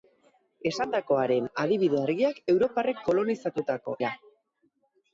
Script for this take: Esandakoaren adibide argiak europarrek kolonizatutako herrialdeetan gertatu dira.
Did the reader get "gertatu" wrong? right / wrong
wrong